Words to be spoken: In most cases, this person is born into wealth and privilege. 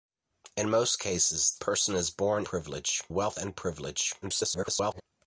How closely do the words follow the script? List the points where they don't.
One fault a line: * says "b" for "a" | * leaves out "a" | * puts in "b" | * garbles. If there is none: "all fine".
* leaves out "this"
* says "privilege" for "into"
* garbles